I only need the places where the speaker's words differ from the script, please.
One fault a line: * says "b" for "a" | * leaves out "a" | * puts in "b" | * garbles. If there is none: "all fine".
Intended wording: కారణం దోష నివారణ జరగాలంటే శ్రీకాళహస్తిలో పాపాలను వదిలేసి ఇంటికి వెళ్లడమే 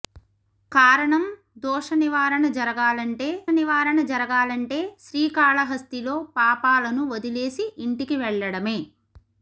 * puts in "నివారణ జరగాలంటే"